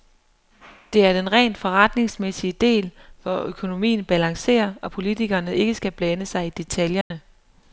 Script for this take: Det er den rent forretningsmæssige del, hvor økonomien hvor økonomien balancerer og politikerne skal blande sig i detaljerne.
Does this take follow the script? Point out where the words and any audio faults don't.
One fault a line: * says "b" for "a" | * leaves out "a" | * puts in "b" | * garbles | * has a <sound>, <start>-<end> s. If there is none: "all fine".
* leaves out "hvor økonomien"
* puts in "ikke"
* has a dropout, 7.0-7.1 s